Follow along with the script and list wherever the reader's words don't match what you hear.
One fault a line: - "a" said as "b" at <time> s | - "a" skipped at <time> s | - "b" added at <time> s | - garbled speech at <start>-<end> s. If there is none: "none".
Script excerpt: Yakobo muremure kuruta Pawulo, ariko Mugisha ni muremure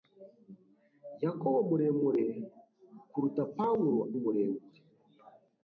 - "ariko Mugisha ni" skipped at 4.0 s